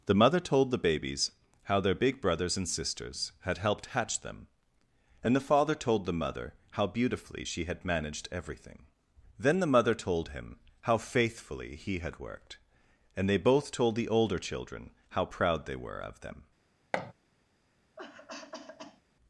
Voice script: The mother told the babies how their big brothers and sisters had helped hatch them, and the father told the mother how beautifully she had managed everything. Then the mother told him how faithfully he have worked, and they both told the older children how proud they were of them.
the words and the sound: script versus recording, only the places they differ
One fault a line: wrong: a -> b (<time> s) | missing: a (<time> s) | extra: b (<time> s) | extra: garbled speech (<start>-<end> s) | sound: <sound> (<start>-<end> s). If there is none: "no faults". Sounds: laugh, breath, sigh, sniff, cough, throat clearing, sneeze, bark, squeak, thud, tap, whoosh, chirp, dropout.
wrong: have -> had (12.0 s)
sound: thud (16.9-17.1 s)
sound: cough (18.0-19.0 s)